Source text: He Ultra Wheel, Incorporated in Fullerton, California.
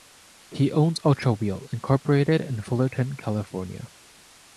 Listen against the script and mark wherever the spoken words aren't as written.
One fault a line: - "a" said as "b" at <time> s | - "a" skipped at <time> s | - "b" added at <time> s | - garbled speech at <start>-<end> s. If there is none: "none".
- "owns" added at 0.7 s